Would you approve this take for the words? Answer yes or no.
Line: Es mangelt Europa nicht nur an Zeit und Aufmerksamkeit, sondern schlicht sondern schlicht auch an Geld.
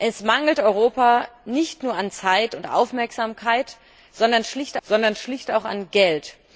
yes